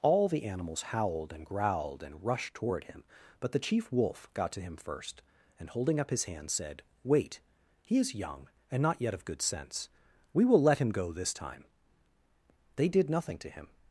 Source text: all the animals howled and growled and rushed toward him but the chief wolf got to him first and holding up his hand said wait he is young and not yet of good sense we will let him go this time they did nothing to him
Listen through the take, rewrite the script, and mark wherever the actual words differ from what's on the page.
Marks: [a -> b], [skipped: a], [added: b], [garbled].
all the animals howled and growled and rushed toward him but the chief wolf got to him first and holding up his hand said wait he is young and not yet of good sense we will let him go this time they did nothing to him